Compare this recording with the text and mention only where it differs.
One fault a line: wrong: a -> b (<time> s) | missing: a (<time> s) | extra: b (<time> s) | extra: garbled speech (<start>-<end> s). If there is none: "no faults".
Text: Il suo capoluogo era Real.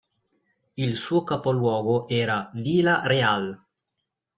extra: Vila (2.5 s)